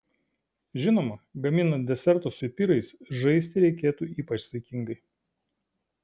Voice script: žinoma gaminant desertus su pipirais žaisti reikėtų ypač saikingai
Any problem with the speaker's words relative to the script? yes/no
yes